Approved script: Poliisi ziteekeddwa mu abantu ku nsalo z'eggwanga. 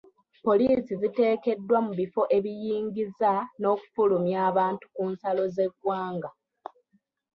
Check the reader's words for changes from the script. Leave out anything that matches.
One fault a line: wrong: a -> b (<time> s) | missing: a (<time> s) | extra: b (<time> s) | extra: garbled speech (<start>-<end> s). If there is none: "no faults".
extra: bifo ebiyingiza n'okufulumya (2.0 s)